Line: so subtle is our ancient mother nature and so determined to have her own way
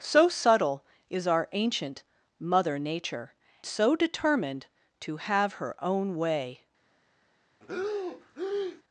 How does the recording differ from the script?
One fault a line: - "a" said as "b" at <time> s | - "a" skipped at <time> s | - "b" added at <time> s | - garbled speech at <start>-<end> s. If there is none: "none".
- "and" skipped at 3.4 s